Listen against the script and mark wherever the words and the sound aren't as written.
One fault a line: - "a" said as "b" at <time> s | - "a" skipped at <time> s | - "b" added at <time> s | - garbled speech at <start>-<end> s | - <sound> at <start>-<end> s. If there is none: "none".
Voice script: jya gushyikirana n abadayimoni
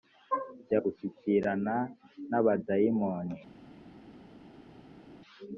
none